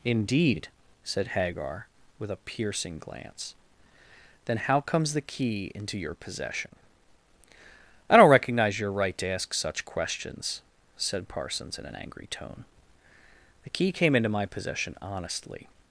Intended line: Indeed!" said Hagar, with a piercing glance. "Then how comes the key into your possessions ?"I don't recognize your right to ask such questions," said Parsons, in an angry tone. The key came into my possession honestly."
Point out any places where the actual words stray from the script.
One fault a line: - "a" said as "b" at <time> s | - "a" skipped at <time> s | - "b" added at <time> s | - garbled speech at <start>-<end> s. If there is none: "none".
- "possessions" said as "possession" at 6.2 s